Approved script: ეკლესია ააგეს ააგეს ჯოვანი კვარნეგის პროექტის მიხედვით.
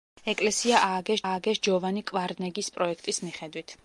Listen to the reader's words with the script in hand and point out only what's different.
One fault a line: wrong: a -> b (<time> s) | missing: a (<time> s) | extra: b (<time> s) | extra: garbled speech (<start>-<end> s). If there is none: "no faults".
no faults